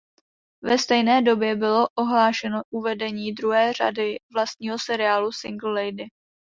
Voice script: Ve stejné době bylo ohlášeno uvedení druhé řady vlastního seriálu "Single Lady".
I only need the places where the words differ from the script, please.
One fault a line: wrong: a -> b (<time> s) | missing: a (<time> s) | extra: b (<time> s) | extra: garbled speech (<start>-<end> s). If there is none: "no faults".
no faults